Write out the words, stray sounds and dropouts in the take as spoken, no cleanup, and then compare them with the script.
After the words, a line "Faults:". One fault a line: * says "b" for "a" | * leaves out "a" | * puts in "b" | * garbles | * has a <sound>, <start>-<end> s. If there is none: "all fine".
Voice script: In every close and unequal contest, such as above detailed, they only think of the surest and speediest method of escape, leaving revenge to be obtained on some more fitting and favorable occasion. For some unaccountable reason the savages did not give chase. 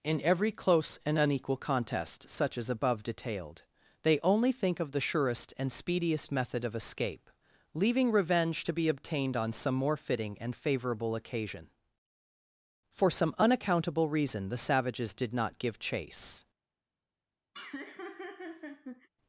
In every close and unequal contest, such as above detailed, they only think of the surest and speediest method of escape, leaving revenge to be obtained on some more fitting and favorable occasion. For some unaccountable reason the savages did not give chase.
Faults:
* has a laugh, 17.5-19.1 s